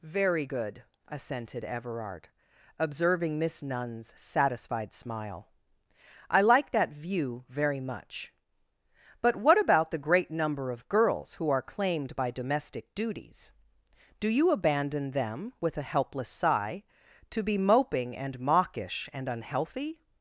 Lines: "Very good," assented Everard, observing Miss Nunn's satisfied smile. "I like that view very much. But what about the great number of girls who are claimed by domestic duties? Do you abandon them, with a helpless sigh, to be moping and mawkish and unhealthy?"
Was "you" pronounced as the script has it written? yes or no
yes